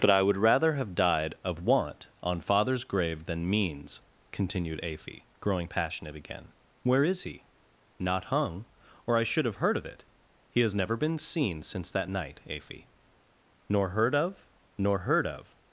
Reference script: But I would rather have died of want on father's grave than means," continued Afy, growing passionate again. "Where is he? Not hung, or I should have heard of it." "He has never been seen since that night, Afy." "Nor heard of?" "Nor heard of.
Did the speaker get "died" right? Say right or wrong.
right